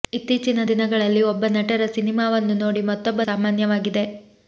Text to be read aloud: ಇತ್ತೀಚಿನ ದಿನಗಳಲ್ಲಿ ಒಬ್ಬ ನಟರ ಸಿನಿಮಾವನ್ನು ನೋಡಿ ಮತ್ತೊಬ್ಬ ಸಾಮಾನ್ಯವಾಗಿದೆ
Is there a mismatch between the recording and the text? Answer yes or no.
no